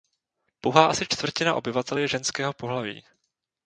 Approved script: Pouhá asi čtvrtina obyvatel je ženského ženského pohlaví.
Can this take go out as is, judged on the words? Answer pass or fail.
fail